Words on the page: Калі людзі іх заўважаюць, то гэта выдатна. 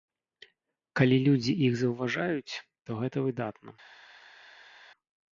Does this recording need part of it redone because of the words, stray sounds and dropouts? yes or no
no